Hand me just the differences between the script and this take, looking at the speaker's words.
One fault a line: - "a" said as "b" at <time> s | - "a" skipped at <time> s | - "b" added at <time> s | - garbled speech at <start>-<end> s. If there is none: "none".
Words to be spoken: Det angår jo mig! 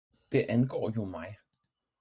none